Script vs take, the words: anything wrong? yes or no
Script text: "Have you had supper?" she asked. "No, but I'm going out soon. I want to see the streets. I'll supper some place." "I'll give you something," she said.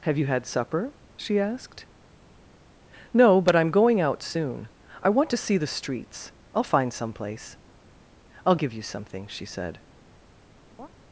yes